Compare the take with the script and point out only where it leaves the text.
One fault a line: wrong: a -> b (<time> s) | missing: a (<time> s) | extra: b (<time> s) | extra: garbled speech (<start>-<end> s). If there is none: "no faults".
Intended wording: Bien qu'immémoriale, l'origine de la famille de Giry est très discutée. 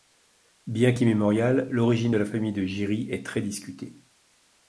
no faults